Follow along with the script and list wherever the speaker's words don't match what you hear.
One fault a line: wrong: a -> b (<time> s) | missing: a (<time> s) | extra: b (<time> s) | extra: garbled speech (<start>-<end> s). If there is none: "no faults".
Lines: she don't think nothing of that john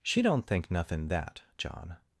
missing: of (1.1 s)